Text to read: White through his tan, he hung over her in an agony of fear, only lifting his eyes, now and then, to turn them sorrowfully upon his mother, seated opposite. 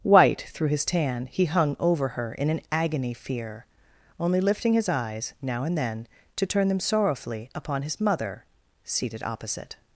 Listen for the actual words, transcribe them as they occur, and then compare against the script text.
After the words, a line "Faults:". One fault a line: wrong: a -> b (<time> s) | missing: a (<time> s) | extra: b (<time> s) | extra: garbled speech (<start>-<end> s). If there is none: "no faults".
White through his tan, he hung over her in an agony fear, only lifting his eyes, now and then, to turn them sorrowfully upon his mother, seated opposite.
Faults:
missing: of (3.1 s)